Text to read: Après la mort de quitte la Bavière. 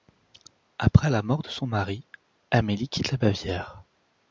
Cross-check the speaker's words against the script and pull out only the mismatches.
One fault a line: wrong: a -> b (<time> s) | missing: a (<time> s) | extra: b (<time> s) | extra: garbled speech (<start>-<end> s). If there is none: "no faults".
extra: son mari Amélie (1.5 s)